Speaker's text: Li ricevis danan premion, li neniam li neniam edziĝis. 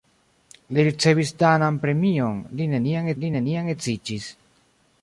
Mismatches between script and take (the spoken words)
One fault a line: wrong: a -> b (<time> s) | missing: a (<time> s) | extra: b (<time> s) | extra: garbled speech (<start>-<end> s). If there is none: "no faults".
no faults